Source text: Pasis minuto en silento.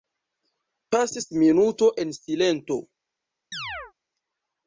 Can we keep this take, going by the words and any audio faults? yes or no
no